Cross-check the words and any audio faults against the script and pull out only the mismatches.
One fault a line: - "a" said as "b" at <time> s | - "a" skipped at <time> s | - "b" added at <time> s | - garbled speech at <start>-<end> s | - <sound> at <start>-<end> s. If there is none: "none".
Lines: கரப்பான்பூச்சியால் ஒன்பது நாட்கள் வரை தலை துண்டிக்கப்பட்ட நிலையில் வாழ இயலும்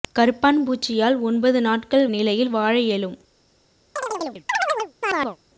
- "வரை தலை துண்டிக்கப்பட்ட" skipped at 2.1 s
- chirp at 4.0-5.4 s